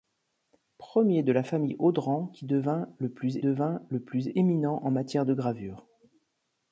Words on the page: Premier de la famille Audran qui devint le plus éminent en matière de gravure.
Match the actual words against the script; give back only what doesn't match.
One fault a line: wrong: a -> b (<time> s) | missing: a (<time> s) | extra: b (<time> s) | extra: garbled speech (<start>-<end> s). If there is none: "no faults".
extra: devint le plus (3.4 s)